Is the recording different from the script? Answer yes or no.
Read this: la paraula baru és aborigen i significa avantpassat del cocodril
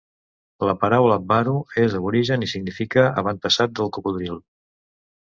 no